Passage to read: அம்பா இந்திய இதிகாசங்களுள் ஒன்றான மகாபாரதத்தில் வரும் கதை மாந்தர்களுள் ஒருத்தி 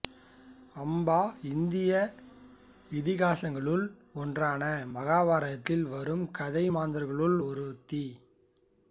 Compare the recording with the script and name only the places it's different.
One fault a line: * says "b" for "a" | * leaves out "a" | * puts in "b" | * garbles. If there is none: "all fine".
all fine